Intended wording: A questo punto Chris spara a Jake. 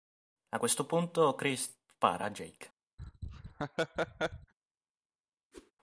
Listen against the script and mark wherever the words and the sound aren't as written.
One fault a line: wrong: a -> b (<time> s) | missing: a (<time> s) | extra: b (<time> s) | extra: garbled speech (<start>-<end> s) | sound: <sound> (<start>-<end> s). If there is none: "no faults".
sound: laugh (3.0-4.5 s)
sound: whoosh (5.5-5.7 s)